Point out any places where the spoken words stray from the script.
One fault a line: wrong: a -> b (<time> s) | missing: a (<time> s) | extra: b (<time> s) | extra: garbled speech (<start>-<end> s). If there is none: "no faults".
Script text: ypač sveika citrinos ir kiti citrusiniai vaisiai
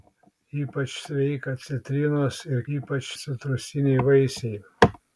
wrong: kiti -> ypač (2.8 s)